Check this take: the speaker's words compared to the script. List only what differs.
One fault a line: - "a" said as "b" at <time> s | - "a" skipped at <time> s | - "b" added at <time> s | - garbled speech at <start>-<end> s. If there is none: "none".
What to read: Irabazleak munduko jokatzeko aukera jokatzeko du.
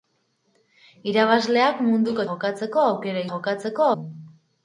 none